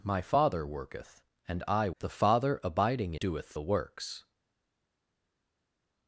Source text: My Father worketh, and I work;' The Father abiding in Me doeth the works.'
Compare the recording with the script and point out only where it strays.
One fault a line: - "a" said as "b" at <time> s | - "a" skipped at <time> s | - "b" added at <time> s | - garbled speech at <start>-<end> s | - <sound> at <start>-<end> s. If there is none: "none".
- "work" skipped at 1.9 s
- "in Me" skipped at 3.2 s